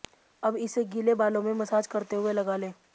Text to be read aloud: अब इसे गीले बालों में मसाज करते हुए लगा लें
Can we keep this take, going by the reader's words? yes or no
yes